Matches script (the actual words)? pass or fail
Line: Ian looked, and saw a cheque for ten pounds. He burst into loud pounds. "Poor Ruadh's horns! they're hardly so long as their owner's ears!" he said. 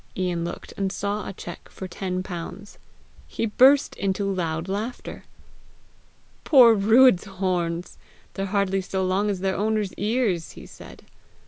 fail